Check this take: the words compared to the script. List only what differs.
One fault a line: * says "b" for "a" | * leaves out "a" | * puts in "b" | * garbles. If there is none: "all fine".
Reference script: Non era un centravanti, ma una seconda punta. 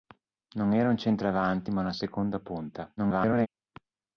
* garbles